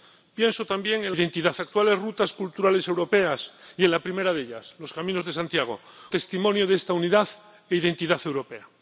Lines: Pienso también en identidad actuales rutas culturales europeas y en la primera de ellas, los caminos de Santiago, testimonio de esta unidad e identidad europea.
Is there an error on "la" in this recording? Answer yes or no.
no